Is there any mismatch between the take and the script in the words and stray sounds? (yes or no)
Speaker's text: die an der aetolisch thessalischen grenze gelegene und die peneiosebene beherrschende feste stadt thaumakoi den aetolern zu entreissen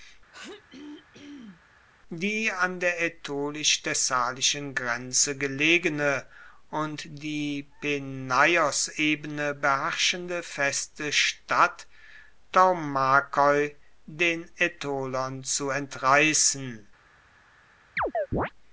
yes